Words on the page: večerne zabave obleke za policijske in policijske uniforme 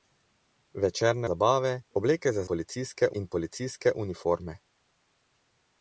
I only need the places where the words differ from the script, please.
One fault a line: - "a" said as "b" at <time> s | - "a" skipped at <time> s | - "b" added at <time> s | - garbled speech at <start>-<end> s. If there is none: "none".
none